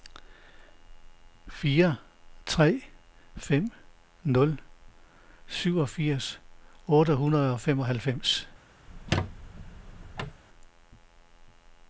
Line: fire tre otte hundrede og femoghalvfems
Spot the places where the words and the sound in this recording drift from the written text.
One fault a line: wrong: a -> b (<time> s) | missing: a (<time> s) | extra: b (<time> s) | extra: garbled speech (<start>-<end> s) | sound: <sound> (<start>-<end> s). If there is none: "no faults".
extra: fem nul syvogfirs (3.4 s)
sound: squeak (8.9-10.4 s)